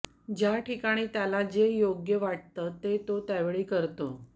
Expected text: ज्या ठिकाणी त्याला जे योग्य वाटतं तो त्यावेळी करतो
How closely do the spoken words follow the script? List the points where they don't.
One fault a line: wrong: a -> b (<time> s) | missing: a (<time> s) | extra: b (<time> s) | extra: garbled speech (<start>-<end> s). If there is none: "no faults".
extra: ते (2.8 s)